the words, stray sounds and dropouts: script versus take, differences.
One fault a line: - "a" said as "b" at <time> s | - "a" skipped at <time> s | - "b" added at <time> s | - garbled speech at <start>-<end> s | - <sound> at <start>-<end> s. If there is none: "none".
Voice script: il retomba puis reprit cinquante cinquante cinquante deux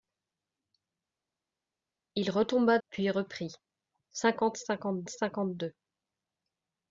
none